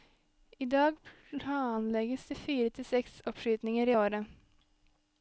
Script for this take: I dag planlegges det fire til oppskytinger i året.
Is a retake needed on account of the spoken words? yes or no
yes